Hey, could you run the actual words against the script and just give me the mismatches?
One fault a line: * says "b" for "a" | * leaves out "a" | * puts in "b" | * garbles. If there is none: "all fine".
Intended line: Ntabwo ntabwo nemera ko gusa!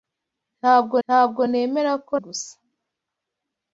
all fine